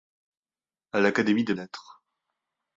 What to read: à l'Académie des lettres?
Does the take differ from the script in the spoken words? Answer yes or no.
no